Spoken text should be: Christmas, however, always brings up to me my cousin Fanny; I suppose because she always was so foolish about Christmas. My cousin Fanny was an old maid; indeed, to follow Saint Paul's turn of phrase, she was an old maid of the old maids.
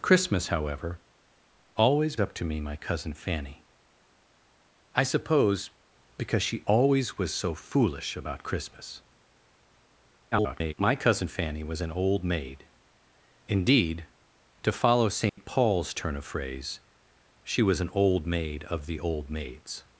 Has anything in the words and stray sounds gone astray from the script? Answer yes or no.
yes